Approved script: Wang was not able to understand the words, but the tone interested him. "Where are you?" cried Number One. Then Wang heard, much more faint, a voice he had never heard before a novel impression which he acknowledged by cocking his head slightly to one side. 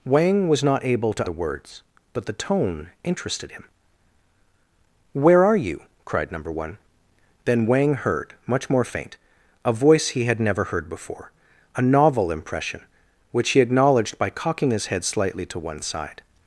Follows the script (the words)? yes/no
no